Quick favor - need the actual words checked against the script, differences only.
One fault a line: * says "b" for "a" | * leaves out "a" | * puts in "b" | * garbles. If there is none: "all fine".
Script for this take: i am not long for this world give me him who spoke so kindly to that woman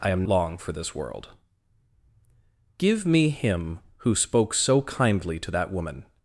* leaves out "not"